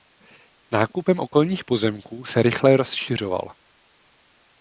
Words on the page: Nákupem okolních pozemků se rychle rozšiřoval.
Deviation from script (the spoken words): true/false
false